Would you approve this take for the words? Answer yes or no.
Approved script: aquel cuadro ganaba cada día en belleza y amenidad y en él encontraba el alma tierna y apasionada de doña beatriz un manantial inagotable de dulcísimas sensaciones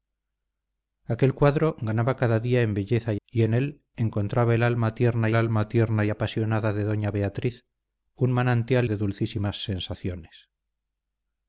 no